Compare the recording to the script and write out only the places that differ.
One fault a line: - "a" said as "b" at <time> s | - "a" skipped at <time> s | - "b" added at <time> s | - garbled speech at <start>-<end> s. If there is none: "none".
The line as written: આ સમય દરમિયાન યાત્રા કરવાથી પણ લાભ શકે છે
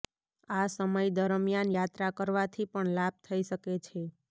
- "થઈ" added at 3.2 s